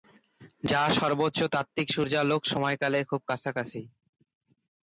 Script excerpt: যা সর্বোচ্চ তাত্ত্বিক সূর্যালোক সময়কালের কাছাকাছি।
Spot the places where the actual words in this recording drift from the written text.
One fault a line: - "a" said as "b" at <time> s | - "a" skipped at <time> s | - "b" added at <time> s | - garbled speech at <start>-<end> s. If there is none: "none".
- "খুব" added at 3.1 s